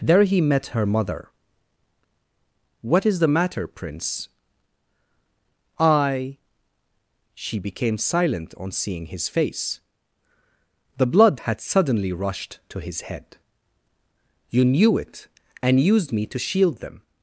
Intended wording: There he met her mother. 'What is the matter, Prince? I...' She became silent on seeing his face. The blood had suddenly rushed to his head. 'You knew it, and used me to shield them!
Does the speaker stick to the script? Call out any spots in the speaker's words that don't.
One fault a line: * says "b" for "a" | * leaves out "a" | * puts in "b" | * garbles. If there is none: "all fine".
all fine